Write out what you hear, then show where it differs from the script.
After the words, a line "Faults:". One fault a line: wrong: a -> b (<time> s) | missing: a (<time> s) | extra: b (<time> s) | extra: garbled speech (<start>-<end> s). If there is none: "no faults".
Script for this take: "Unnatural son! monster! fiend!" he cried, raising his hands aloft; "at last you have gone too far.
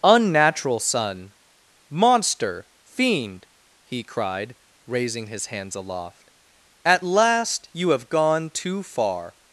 "Unnatural son! monster! fiend!" he cried, raising his hands aloft; "at last you have gone too far.
Faults:
no faults